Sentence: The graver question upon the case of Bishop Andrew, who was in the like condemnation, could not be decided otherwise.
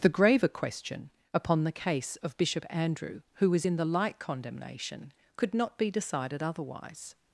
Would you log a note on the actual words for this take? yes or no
no